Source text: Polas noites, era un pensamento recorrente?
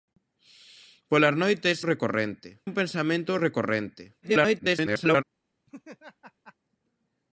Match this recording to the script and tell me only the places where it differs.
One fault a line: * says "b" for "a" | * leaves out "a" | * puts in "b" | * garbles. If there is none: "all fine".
* says "recorrente" for "era"
* garbles